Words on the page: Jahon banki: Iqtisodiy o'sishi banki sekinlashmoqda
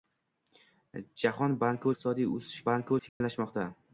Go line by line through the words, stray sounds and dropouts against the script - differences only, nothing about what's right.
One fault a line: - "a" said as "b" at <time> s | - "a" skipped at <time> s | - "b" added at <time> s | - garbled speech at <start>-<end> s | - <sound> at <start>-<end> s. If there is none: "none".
- dropout at 3.1-3.2 s